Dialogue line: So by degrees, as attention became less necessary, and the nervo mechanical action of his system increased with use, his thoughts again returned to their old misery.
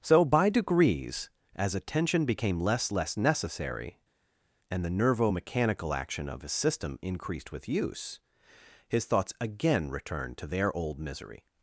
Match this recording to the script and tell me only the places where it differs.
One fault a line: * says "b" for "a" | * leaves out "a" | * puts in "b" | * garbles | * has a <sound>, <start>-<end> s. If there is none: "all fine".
* puts in "less"